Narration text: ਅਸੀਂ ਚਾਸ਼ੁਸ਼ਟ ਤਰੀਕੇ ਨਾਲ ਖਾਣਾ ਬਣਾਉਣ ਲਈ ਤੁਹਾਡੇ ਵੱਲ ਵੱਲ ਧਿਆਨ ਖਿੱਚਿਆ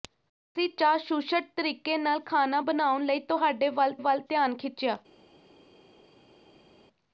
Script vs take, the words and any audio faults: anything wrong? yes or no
no